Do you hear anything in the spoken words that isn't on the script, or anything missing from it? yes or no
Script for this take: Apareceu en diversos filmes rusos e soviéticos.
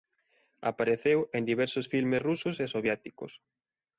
no